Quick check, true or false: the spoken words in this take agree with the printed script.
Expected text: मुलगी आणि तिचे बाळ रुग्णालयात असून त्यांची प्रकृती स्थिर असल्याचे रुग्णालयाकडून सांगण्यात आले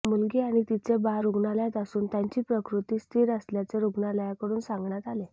true